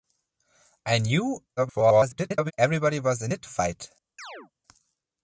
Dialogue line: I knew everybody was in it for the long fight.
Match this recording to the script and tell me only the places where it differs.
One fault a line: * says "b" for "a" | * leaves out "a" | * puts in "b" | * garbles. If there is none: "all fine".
* garbles
* leaves out "for the long"